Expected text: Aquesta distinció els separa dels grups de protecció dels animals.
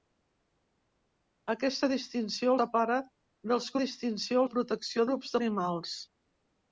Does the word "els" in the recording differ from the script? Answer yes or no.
yes